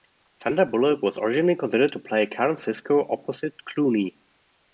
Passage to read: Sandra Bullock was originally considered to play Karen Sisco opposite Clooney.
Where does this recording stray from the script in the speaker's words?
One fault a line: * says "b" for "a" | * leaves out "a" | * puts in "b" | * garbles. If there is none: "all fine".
all fine